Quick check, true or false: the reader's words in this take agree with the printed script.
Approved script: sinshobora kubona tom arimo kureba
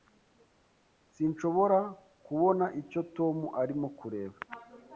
false